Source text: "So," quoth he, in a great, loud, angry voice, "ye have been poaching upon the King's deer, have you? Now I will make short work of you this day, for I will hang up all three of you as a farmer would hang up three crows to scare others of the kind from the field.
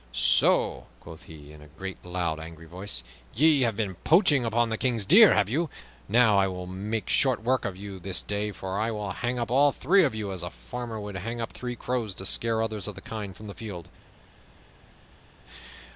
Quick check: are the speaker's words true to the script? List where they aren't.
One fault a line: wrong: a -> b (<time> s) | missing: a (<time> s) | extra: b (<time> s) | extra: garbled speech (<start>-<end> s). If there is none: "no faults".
no faults